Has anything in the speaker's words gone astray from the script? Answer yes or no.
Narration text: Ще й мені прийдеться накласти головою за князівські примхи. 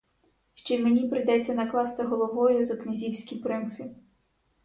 no